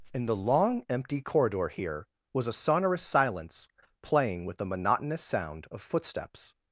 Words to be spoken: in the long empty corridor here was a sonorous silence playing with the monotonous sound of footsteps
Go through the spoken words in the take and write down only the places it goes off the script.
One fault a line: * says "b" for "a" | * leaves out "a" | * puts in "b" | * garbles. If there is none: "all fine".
all fine